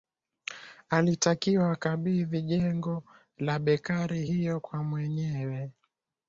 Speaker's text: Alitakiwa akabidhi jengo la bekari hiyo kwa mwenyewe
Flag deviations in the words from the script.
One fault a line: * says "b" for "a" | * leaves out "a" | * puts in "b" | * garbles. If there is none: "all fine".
all fine